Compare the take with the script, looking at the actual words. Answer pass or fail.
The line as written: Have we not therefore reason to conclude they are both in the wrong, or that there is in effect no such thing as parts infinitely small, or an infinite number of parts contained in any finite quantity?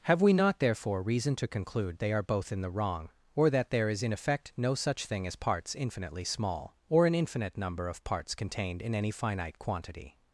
pass